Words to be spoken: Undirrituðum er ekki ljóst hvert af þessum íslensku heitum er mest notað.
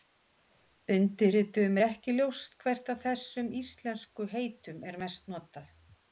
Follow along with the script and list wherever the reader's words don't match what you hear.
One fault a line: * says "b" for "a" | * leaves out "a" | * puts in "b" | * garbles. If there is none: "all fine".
all fine